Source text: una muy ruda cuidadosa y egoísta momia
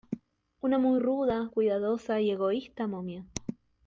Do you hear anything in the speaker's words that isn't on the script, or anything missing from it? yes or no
no